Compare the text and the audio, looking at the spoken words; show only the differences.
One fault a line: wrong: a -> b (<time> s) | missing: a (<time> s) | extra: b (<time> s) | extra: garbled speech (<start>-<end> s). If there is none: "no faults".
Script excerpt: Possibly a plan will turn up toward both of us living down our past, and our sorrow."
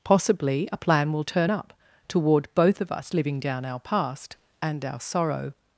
no faults